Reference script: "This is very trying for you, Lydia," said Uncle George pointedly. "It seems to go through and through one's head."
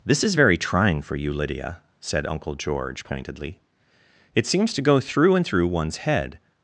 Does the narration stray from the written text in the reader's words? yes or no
no